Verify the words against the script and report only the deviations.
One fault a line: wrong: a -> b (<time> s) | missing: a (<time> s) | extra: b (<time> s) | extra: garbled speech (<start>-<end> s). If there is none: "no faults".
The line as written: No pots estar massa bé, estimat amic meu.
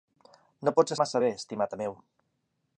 missing: estar (0.9 s)
missing: amic (1.7 s)